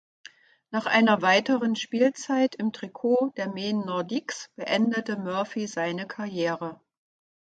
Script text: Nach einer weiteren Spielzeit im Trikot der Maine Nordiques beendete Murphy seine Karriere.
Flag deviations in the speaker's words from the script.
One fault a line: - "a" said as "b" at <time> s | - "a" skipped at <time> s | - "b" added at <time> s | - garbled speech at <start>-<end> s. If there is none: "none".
none